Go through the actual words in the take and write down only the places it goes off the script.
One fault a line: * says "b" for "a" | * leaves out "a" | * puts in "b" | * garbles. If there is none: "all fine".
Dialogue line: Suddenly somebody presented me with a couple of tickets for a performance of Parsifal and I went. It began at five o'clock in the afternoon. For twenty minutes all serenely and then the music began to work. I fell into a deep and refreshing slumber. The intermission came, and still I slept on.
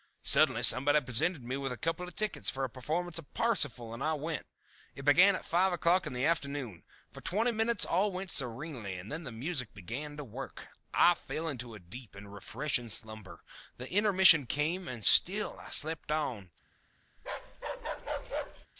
* puts in "went"